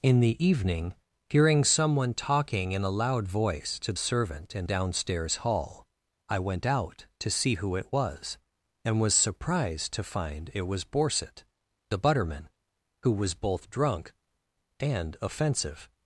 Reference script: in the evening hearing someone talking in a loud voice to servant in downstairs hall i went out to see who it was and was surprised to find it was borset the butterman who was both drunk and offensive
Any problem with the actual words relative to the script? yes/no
no